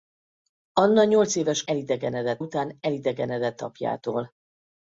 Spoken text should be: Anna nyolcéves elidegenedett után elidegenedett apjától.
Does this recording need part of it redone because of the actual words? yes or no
no